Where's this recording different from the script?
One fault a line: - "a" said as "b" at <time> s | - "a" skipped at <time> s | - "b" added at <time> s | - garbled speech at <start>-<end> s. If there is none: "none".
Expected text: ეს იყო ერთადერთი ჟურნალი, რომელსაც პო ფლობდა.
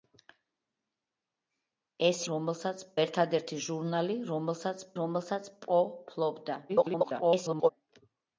- "იყო" said as "რომელსაც" at 2.3 s
- "რომელსაც" added at 5.0 s
- garbled speech at 6.7-7.7 s